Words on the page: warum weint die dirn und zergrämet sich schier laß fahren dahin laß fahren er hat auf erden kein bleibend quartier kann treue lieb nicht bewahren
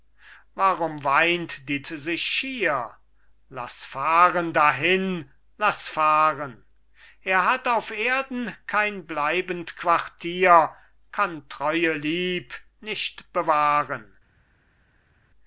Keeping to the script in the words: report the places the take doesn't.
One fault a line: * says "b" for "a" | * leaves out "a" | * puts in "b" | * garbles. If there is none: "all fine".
* leaves out "dirn und zergrämet"